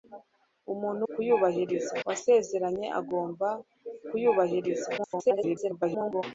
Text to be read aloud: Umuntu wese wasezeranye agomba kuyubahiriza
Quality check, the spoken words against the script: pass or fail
fail